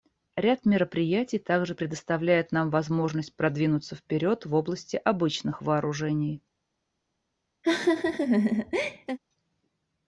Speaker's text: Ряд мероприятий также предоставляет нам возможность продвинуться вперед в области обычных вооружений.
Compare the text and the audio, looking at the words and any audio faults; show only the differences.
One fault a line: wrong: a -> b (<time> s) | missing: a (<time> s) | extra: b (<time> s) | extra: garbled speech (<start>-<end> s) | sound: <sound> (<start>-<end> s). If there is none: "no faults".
sound: laugh (7.6-9.2 s)